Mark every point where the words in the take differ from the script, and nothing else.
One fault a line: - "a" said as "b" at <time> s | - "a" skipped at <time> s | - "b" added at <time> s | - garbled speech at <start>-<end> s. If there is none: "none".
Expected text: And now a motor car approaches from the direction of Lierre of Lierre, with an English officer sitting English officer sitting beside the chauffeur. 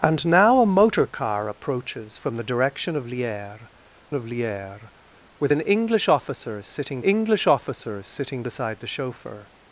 none